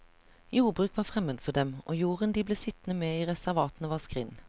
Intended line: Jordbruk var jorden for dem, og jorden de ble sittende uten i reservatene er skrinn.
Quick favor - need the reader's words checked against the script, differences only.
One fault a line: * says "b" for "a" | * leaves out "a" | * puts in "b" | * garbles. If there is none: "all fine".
* says "fremmed" for "jorden"
* says "med" for "uten"
* says "var" for "er"